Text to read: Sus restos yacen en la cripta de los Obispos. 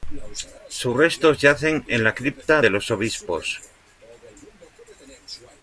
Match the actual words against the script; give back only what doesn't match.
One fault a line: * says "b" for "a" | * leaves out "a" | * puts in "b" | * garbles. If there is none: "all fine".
all fine